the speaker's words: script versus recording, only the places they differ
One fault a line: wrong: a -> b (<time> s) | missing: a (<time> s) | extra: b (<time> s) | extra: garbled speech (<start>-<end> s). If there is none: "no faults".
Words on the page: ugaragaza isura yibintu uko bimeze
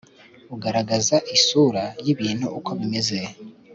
no faults